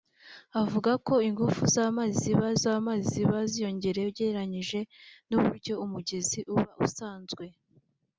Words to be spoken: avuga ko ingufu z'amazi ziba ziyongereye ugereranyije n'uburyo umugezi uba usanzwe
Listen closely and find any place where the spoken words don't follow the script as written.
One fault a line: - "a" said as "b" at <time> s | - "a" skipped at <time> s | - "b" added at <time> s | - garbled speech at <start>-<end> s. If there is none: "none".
- "z'amazi ziba" added at 2.6 s